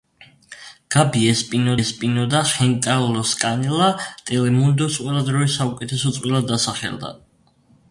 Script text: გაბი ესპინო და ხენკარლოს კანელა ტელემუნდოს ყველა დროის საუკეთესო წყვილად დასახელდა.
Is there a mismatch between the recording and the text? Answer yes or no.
yes